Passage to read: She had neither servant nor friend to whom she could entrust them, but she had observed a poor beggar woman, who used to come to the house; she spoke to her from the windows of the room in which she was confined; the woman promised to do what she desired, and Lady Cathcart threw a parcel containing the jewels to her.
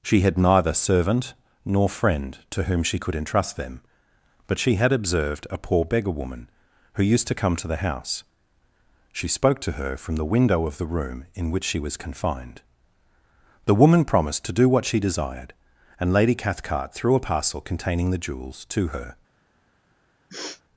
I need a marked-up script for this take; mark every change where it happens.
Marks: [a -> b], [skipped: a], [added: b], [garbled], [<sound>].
She had neither servant nor friend to whom she could entrust them, but she had observed a poor beggar woman, who used to come to the house; she spoke to her from the [windows -> window] of the room in which she was confined; the woman promised to do what she desired, and Lady Cathcart threw a parcel containing the jewels to her. [sniff]